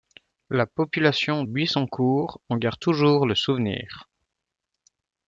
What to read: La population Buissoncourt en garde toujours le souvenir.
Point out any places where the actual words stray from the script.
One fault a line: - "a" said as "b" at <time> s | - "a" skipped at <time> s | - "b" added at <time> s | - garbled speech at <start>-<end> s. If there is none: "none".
none